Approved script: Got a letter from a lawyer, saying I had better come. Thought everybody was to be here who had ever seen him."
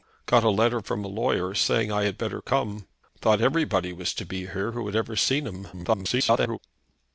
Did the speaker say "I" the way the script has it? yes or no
yes